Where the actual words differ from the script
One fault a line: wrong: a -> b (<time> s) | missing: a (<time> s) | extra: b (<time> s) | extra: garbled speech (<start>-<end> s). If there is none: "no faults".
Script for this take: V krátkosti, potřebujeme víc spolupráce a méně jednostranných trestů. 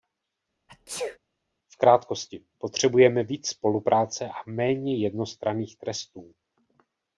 no faults